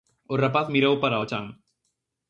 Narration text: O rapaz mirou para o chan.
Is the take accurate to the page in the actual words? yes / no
yes